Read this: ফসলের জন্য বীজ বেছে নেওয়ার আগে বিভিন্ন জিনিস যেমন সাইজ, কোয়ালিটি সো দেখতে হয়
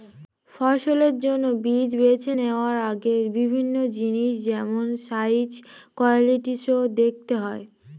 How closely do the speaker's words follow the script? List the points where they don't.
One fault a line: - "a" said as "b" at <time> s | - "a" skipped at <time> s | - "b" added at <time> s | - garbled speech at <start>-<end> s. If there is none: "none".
none